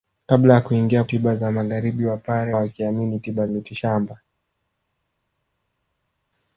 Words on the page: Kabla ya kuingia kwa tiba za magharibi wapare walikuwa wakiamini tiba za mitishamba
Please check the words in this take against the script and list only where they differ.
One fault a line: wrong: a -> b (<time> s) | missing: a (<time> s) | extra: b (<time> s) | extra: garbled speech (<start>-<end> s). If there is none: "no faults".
missing: kwa (1.0 s)
missing: walikuwa (2.6 s)
missing: za (3.5 s)